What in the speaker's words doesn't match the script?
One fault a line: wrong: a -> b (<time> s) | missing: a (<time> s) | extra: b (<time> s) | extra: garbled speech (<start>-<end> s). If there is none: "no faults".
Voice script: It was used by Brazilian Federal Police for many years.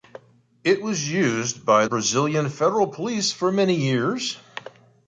no faults